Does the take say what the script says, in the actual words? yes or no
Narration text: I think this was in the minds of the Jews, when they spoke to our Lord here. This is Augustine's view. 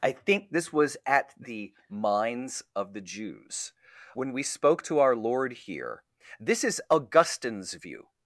no